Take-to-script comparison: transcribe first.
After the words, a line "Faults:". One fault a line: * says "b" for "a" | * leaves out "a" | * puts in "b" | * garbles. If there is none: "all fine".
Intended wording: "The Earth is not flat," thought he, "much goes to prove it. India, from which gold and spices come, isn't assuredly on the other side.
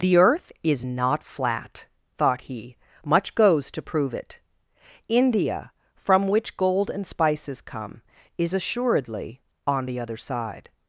"The Earth is not flat," thought he, "much goes to prove it. India, from which gold and spices come, is assuredly on the other side.
Faults:
* says "is" for "isn't"